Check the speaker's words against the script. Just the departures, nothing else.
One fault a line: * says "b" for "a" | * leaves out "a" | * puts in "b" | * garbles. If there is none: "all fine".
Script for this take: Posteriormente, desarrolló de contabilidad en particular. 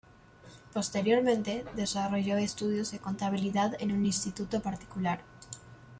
* puts in "estudios"
* puts in "un instituto"